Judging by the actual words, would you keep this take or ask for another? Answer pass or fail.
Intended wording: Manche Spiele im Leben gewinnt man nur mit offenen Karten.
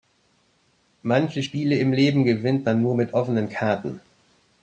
pass